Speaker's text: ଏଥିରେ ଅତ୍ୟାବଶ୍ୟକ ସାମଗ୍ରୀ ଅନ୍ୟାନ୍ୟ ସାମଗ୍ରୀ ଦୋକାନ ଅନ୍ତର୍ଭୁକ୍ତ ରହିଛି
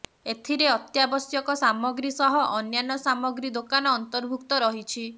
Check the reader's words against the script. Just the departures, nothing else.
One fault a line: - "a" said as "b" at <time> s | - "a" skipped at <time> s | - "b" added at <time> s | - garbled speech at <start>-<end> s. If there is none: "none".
- "ସହ" added at 2.1 s